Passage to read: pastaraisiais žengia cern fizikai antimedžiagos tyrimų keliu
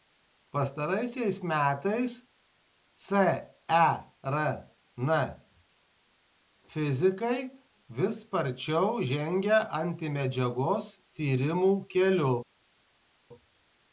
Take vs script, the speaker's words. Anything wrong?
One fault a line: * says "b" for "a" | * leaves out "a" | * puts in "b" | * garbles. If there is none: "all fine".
* says "metais" for "žengia"
* puts in "vis sparčiau žengia"